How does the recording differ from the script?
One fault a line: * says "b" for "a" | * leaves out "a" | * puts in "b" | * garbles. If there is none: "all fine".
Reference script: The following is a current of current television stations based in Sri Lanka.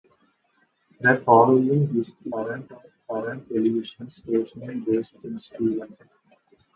all fine